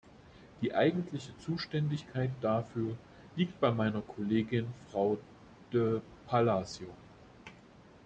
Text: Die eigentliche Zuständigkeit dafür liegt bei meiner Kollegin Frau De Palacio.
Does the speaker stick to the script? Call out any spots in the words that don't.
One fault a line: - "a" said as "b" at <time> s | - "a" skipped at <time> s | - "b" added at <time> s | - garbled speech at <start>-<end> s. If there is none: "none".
none